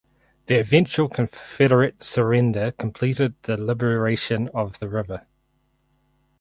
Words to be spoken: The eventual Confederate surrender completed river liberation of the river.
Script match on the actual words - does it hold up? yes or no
no